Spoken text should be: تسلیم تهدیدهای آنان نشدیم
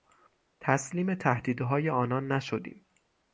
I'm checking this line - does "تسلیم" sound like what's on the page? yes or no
yes